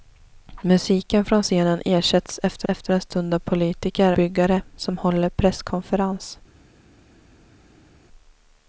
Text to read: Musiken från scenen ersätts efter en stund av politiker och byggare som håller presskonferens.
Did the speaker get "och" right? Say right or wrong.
wrong